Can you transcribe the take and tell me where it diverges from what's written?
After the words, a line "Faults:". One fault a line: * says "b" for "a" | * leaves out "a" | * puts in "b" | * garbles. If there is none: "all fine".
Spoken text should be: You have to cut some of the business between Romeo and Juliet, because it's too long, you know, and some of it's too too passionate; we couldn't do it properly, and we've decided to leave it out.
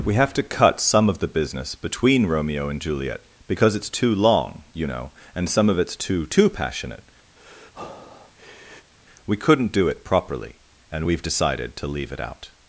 We have to cut some of the business between Romeo and Juliet, because it's too long, you know, and some of it's too too passionate; we couldn't do it properly, and we've decided to leave it out.
Faults:
* says "We" for "You"